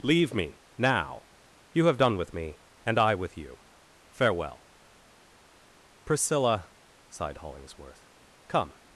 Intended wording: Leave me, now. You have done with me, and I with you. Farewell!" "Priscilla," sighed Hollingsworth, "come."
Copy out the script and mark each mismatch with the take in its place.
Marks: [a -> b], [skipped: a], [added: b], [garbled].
Leave me, now. You have done with me, and I with you. Farewell!" "Priscilla," sighed Hollingsworth, "come."